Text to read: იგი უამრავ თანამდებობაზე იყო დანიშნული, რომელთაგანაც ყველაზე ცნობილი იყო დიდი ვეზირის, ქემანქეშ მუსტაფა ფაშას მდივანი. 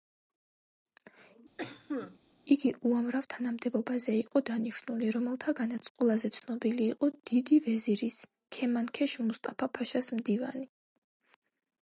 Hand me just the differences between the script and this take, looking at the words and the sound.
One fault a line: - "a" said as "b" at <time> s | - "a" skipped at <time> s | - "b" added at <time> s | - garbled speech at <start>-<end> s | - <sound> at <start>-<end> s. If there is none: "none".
- cough at 1.6-2.2 s